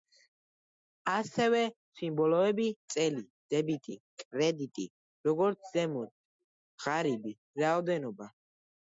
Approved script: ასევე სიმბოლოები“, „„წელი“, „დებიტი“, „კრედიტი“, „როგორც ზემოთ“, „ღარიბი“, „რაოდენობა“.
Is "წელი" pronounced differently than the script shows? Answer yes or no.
no